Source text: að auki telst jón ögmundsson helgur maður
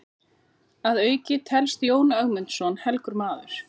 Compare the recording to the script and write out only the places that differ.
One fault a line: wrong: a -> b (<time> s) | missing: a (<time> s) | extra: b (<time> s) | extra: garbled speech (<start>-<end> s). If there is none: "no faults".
no faults